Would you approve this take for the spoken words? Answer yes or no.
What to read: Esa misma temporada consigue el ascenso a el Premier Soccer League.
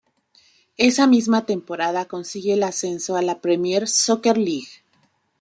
no